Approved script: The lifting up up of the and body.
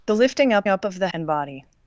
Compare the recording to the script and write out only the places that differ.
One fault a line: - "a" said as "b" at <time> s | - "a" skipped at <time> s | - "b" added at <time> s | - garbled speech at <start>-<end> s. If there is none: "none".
none